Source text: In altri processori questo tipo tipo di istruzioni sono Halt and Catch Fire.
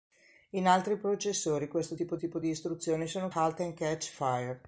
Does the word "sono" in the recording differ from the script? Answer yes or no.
no